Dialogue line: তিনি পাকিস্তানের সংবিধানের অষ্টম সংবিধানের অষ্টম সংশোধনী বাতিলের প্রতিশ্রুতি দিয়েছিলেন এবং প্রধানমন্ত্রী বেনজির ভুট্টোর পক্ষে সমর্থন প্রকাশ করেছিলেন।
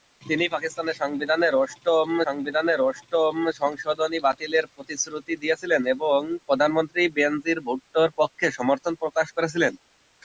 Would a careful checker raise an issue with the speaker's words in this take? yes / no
no